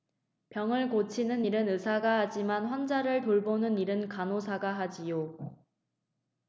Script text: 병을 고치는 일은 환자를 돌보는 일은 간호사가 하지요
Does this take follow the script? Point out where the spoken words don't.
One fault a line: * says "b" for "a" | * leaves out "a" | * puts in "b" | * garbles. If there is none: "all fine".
* puts in "의사가 하지만"